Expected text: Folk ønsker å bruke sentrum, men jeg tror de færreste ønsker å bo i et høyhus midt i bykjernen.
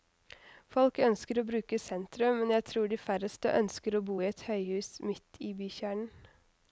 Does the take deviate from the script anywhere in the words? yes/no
no